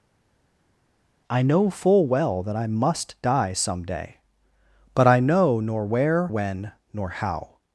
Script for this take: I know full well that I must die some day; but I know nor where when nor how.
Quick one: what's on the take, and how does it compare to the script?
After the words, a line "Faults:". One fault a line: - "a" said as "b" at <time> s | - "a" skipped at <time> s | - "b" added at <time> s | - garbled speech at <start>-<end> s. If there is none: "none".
I know full well that I must die some day; but I know nor where when nor how.
Faults:
none